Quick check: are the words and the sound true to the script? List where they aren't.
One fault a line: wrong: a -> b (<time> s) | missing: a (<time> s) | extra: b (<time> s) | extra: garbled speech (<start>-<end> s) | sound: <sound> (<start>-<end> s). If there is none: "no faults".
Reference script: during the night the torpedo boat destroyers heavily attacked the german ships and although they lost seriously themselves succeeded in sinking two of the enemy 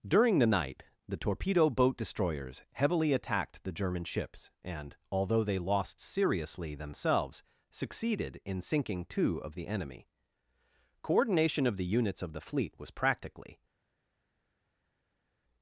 extra: coordination of the units of the fleet was practically (11.0 s)